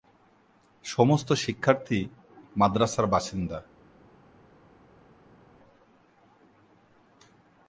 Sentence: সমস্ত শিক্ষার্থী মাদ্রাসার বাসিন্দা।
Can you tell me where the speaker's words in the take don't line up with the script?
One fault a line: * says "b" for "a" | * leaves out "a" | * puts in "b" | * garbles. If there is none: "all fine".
all fine